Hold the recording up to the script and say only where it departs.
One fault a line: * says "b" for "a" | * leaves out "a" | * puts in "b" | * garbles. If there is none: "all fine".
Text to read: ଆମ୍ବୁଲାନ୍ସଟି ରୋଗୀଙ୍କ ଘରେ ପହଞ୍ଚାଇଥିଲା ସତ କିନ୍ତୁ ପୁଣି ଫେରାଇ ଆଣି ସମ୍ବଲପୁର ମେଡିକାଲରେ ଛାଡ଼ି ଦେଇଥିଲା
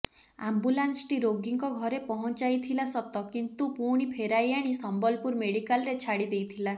all fine